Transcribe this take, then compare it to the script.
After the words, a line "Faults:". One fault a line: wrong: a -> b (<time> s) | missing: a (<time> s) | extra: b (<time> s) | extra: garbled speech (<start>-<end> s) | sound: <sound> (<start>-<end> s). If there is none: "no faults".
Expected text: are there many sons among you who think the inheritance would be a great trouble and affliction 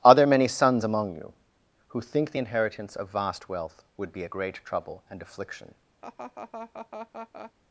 are there many sons among you who think the inheritance of vast wealth would be a great trouble and affliction
Faults:
extra: of vast wealth (3.0 s)
sound: laugh (6.0-7.5 s)